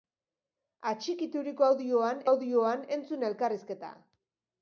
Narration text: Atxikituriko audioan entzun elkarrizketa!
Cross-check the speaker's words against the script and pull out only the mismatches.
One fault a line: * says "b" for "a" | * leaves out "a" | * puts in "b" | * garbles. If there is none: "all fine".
* puts in "audioan"